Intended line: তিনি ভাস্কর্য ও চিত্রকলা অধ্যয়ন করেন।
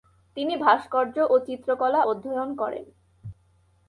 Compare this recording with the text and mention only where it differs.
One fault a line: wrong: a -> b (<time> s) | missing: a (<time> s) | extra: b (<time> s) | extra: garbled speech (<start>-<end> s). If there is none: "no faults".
no faults